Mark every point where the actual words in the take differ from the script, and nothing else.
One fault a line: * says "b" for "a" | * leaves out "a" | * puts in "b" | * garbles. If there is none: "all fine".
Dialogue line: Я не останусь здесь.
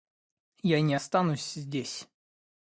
all fine